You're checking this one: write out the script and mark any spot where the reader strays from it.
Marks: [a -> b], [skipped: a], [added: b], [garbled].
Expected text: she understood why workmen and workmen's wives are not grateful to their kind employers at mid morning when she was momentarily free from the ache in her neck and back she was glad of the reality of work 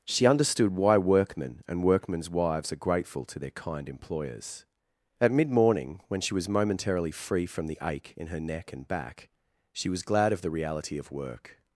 she understood why workmen and workmen's wives are [skipped: not] grateful to their kind employers at mid morning when she was momentarily free from the ache in her neck and back she was glad of the reality of work